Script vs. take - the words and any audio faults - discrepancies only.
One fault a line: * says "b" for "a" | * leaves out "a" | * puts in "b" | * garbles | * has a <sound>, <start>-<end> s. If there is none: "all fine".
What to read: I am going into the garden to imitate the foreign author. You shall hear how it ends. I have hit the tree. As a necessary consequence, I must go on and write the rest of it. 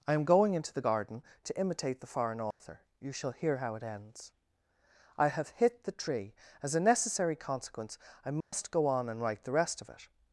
* has a dropout, 2.5-2.6 s
* has a dropout, 8.4-8.5 s